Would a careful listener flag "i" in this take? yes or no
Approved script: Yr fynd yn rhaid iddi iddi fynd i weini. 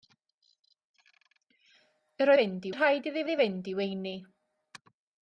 no